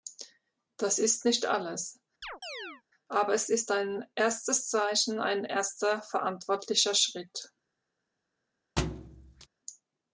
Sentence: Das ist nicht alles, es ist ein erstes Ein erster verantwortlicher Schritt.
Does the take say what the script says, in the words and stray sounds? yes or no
no